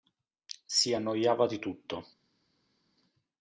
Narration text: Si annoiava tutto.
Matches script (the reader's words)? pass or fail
fail